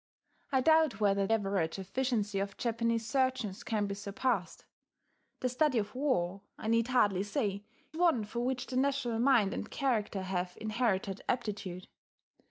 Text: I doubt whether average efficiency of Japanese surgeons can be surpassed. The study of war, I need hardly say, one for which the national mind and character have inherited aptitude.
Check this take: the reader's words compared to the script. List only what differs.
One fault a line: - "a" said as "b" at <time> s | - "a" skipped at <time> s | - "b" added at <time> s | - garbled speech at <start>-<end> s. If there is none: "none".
none